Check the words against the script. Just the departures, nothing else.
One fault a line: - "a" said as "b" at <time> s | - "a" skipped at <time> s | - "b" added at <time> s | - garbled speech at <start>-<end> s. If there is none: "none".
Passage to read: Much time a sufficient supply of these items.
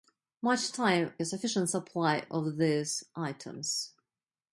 none